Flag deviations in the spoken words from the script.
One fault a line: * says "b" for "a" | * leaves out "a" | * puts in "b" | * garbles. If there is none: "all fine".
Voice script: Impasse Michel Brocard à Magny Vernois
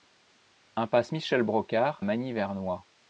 * leaves out "à"